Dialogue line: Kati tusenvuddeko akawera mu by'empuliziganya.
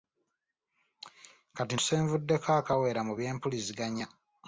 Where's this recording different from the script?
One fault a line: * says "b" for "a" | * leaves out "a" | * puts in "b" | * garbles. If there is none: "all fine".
all fine